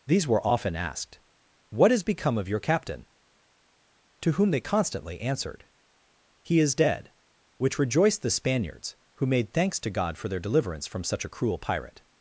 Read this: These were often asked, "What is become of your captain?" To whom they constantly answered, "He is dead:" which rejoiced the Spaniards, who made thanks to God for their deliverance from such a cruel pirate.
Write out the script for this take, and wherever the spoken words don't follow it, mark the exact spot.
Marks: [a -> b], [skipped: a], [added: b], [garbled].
These were often asked, "What [is -> has] become of your captain?" To whom they constantly answered, "He is dead:" which rejoiced the Spaniards, who made thanks to God for their deliverance from such a cruel pirate.